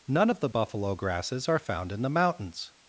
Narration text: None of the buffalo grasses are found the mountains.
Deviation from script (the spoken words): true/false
true